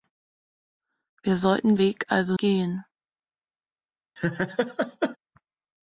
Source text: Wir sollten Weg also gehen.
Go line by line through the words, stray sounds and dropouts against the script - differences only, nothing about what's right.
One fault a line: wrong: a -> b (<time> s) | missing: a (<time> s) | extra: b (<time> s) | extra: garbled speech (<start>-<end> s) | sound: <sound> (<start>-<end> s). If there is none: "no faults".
sound: laugh (4.2-5.2 s)